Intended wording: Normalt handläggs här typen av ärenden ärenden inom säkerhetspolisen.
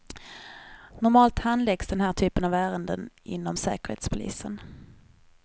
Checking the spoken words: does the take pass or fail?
fail